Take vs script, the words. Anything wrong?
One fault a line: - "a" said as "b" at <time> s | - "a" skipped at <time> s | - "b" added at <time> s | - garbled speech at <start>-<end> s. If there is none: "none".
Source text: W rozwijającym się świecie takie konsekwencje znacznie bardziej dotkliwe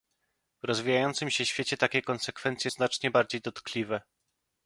none